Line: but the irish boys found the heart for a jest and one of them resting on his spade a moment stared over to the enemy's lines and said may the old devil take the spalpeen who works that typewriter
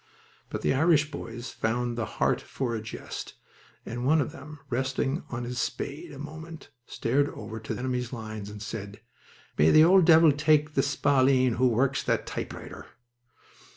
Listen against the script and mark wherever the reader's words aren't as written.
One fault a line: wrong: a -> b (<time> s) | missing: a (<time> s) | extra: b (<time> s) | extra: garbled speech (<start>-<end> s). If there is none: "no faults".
missing: the (7.8 s)